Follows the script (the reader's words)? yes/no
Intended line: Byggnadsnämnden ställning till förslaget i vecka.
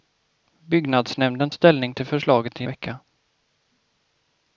yes